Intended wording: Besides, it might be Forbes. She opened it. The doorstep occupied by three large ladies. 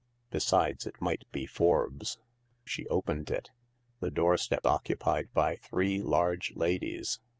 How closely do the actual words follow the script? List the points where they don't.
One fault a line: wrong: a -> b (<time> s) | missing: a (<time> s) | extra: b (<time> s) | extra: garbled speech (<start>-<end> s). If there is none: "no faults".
no faults